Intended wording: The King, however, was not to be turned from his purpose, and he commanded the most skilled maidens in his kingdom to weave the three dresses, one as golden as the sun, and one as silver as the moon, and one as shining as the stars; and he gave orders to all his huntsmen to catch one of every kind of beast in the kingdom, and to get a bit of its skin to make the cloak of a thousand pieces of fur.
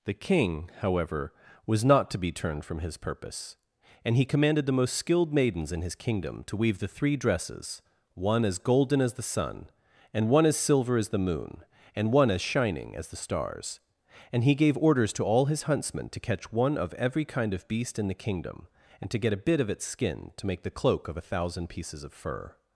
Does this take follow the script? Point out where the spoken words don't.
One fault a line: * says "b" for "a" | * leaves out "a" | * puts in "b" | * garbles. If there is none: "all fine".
all fine